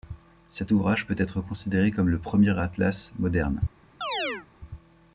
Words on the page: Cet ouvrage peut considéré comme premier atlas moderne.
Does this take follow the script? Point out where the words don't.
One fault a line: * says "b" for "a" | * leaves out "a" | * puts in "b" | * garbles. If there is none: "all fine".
* puts in "être"
* puts in "le"